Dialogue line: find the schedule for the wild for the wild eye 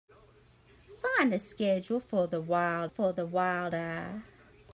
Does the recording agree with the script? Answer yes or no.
yes